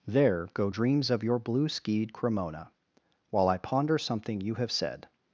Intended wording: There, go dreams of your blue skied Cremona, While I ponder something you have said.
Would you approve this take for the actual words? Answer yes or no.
yes